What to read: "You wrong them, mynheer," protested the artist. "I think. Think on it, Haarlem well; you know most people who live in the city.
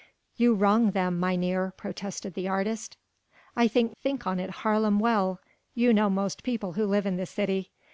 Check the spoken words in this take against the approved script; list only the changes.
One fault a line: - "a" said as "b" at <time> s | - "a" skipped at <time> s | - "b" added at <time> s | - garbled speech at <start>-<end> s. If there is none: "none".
none